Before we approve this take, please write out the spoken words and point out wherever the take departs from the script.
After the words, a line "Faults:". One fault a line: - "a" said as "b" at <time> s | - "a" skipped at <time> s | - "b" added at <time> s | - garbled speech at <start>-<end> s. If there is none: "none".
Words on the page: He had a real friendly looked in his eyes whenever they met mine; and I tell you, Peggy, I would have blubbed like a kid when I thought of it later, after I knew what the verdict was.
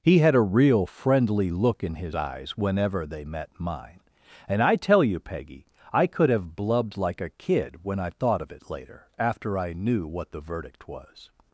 He had a real friendly look in his eyes whenever they met mine; and I tell you, Peggy, I could have blubbed like a kid when I thought of it later, after I knew what the verdict was.
Faults:
- "looked" said as "look" at 1.5 s
- "would" said as "could" at 6.1 s